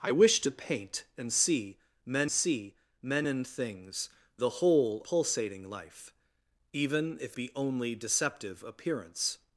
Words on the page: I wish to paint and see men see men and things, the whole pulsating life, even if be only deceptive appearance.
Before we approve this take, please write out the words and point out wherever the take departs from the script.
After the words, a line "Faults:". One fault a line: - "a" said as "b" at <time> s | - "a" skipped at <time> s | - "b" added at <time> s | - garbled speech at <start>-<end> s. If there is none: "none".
I wish to paint and see men see men and things, the whole pulsating life, even if be only deceptive appearance.
Faults:
none